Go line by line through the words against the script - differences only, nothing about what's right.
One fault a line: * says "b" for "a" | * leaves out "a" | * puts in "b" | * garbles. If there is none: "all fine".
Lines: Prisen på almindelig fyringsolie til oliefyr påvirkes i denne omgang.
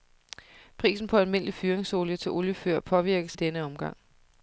all fine